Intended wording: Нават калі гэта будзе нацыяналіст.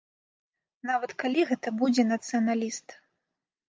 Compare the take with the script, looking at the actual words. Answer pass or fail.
pass